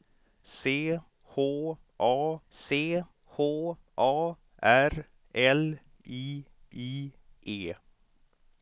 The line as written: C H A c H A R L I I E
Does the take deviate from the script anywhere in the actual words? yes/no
no